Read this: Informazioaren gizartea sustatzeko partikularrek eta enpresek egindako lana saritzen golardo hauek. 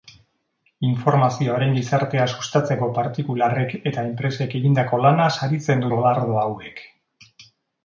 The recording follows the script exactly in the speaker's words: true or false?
true